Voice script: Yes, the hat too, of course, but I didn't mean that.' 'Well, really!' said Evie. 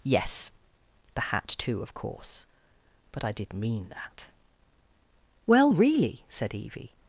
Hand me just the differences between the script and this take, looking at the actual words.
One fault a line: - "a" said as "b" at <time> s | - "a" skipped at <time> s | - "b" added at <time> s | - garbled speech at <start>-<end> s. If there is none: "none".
- "didn't" said as "did" at 3.3 s